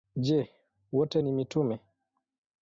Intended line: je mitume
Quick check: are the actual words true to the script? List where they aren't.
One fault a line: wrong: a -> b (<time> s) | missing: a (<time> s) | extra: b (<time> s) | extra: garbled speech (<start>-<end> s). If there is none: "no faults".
extra: wote ni (0.9 s)